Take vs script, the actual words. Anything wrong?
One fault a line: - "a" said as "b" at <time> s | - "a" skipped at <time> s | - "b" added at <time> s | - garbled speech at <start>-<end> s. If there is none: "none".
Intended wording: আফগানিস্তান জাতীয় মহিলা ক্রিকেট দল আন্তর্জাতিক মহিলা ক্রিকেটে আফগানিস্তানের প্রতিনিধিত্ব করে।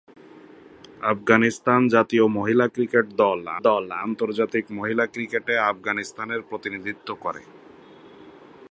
- "দল" added at 3.6 s